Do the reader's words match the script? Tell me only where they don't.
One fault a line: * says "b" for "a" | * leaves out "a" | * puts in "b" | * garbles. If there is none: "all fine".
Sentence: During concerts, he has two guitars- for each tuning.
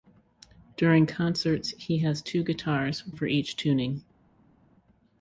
all fine